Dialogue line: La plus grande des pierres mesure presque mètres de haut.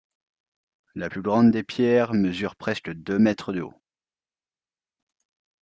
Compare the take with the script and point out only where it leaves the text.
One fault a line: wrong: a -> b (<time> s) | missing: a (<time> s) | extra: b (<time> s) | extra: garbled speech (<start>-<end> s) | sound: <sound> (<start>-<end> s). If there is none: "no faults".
extra: deux (2.9 s)